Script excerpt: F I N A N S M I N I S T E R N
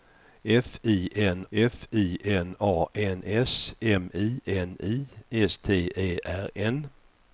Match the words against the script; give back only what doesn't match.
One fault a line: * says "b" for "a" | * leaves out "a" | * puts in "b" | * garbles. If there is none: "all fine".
* puts in "f I N"